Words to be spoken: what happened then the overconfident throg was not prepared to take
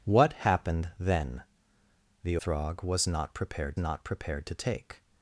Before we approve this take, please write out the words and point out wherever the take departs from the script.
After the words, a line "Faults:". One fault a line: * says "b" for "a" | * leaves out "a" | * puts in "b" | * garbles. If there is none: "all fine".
what happened then the throg was not prepared not prepared to take
Faults:
* leaves out "overconfident"
* puts in "not prepared"